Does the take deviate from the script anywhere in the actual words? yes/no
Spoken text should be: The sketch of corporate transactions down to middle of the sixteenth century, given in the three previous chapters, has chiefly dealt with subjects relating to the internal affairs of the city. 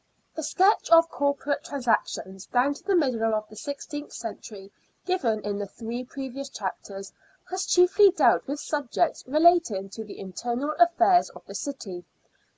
yes